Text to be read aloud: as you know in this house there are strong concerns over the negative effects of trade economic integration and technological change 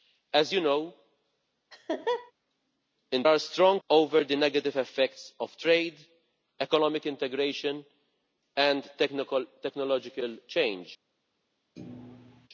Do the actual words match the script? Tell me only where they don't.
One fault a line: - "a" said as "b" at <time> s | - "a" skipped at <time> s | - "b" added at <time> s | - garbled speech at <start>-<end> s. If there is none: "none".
- "this house there" skipped at 3.2 s
- "concerns" skipped at 3.8 s